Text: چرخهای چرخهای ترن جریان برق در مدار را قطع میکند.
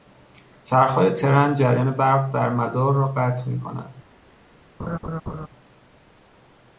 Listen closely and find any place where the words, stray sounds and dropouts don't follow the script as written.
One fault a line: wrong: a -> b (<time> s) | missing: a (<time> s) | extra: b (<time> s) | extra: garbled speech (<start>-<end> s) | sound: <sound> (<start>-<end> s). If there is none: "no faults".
missing: چرخهای (1.1 s)
sound: laugh (4.8-5.5 s)